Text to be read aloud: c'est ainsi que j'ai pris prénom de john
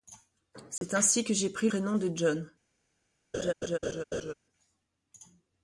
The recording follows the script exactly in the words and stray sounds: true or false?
false